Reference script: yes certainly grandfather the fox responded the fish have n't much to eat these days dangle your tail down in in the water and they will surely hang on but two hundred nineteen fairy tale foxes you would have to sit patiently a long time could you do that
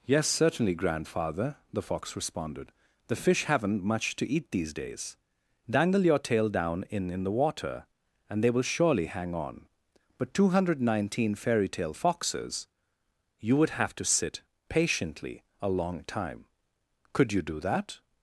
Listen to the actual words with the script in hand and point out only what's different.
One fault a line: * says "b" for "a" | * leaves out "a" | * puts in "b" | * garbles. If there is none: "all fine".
all fine